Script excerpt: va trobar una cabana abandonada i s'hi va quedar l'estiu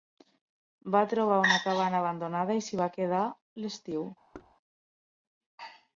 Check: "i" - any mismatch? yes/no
no